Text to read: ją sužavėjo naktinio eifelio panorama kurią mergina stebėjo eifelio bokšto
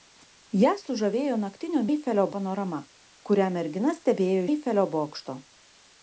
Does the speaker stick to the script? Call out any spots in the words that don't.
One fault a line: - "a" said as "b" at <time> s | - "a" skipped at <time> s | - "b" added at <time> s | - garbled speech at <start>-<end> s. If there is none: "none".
none